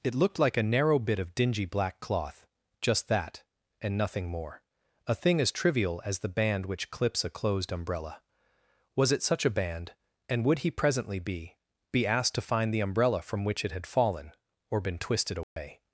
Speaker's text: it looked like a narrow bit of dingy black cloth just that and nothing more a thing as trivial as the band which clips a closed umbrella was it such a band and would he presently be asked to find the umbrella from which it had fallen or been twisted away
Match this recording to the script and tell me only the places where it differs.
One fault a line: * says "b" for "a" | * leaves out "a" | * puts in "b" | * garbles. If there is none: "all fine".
* puts in "be"